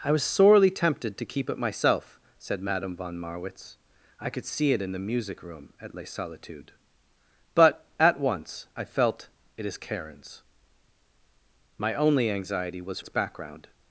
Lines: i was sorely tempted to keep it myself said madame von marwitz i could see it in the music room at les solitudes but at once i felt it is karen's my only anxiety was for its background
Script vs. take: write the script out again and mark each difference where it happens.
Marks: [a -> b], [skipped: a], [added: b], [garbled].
i was sorely tempted to keep it myself said madame von marwitz i could see it in the music room at les solitudes but at once i felt it is karen's my only anxiety was [skipped: for] its background